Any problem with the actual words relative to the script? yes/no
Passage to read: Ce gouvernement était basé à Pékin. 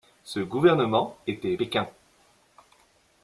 yes